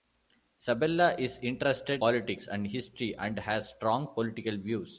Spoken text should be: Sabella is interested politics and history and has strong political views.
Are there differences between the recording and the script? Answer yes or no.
no